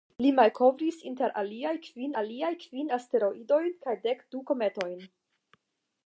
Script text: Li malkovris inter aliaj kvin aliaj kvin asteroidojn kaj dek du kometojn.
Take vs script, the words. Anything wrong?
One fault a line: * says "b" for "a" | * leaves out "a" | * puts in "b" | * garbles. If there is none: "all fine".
all fine